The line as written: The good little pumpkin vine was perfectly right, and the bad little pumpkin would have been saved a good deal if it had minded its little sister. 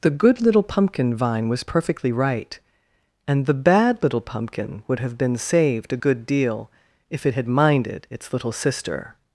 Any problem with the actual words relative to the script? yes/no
no